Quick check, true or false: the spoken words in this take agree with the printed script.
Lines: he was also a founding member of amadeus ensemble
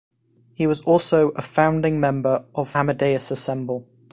true